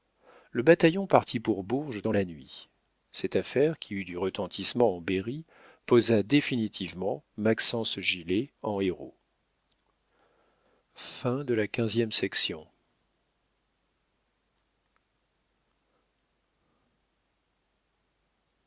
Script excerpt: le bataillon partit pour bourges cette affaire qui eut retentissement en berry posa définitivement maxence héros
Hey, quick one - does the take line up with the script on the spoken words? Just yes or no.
no